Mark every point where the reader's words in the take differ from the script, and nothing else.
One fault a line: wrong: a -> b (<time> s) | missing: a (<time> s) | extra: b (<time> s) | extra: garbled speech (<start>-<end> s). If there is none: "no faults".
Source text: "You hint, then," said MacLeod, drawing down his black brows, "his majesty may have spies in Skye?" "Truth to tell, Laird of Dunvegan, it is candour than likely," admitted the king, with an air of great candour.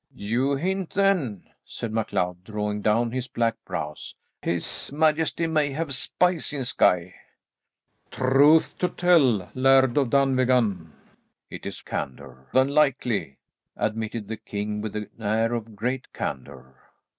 no faults